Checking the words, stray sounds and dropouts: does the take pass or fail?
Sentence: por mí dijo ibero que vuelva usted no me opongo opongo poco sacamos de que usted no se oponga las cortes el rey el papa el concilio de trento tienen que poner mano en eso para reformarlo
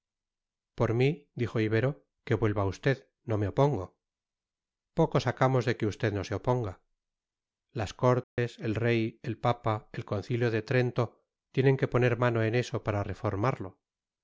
fail